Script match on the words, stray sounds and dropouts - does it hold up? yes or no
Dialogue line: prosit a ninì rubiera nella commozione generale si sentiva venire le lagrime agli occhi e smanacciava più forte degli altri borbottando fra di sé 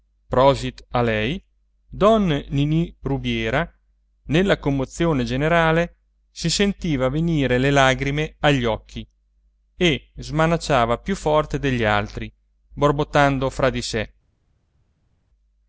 no